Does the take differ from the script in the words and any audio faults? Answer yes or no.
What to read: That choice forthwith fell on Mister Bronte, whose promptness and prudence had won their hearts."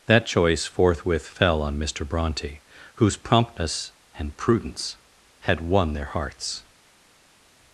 no